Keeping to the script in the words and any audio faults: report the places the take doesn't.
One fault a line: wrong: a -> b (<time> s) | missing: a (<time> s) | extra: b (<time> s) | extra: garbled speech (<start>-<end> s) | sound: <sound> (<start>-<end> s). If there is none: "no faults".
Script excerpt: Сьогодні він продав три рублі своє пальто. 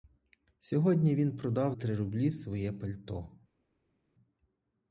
no faults